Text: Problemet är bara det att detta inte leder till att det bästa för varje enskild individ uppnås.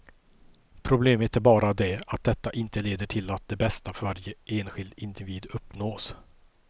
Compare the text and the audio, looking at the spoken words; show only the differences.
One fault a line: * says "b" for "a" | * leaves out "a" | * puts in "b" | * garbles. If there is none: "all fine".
all fine